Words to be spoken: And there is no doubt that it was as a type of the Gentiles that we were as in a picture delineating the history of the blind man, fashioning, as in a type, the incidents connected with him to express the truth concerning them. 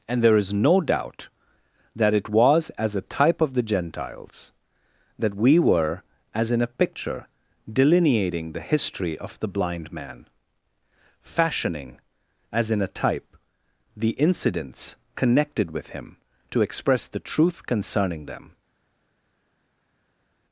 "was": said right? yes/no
yes